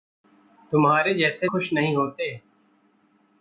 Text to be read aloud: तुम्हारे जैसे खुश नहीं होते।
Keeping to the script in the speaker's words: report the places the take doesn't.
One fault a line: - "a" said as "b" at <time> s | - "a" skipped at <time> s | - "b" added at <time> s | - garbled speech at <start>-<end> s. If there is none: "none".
none